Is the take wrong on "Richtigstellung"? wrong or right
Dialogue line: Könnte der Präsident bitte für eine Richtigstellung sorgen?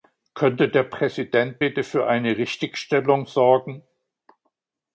right